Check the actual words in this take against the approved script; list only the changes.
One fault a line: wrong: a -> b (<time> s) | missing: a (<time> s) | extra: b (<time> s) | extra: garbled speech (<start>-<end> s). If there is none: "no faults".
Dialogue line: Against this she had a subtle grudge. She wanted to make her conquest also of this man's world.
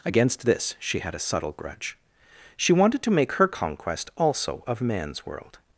missing: this (4.8 s)